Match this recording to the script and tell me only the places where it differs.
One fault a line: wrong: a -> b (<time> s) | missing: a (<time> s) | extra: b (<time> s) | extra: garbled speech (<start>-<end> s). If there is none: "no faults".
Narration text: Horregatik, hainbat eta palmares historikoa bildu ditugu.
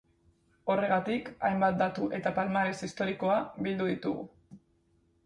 extra: datu (1.8 s)